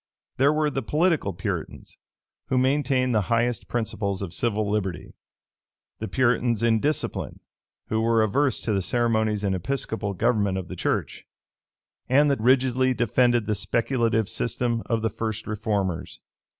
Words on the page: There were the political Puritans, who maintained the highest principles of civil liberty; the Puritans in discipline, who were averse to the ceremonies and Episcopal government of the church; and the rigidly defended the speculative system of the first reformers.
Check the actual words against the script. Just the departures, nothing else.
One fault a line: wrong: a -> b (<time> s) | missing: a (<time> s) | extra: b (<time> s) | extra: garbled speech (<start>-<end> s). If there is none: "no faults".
no faults